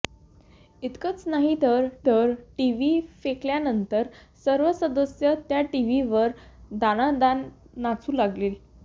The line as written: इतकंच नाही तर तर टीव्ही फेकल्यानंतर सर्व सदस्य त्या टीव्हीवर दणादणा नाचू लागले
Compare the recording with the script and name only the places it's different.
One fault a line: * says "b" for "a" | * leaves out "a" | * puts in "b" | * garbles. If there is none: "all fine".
all fine